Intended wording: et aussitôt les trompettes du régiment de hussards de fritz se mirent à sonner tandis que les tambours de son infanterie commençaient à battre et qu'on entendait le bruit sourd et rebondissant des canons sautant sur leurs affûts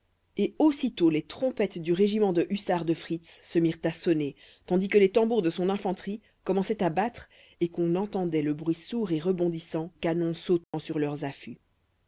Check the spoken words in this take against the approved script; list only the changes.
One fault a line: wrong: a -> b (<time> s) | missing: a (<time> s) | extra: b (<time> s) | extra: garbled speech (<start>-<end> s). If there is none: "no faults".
missing: des (9.9 s)